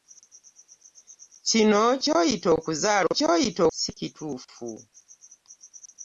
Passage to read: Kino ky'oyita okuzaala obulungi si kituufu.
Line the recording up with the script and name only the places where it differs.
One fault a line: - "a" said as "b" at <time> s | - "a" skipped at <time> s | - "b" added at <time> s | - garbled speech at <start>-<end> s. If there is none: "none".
- "obulungi" said as "ky'oyita" at 3.1 s